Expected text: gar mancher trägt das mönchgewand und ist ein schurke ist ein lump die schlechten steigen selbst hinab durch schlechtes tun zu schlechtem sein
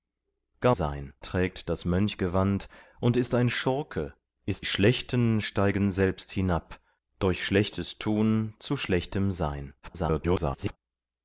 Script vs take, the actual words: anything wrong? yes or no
yes